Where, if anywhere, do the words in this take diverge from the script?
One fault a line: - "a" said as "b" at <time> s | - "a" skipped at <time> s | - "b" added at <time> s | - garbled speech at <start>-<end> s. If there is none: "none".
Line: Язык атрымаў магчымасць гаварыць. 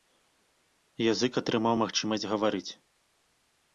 none